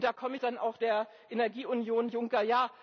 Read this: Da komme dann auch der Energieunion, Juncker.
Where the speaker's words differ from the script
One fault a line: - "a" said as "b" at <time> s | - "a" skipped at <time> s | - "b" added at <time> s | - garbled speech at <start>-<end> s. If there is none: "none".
none